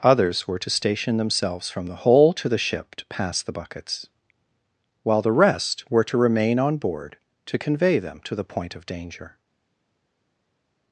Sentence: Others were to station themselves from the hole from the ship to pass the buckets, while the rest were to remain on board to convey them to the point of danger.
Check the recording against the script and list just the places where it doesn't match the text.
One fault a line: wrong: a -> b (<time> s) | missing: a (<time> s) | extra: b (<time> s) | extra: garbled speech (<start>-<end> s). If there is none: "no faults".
wrong: from -> to (2.3 s)